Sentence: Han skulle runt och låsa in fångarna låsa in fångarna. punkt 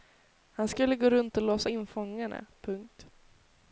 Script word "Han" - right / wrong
right